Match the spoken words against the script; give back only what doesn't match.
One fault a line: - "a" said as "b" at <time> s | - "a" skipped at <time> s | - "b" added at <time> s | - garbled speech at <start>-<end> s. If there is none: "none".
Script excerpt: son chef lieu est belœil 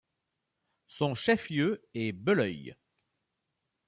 none